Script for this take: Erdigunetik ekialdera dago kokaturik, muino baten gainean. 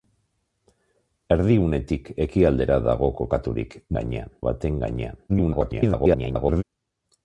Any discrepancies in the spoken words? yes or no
yes